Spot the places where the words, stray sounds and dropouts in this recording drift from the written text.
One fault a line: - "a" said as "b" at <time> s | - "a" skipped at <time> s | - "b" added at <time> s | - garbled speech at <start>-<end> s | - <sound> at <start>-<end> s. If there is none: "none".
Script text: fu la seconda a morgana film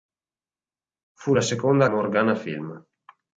none